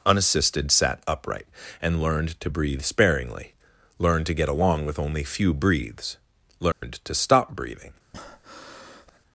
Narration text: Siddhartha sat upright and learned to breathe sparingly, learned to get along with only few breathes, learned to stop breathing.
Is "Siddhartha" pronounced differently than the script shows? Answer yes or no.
yes